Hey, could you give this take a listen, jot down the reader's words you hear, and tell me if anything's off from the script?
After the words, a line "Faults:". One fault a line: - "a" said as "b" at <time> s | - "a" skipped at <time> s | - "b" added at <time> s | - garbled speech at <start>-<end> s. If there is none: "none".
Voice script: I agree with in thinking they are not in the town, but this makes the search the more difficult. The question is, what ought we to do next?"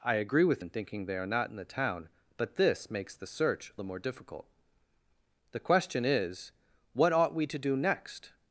I agree with in thinking they are not in the town, but this makes the search the more difficult. The question is, what ought we to do next?"
Faults:
none